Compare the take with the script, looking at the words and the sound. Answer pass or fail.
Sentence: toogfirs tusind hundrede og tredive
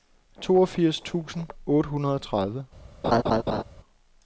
fail